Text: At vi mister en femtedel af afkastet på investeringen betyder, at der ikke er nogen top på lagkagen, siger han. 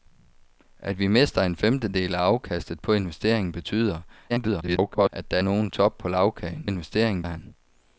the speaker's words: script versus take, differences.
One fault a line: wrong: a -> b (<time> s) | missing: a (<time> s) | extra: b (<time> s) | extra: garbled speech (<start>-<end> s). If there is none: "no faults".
extra: garbled speech (4.3-5.1 s)
missing: ikke (5.4 s)
wrong: siger -> investeringen (6.6 s)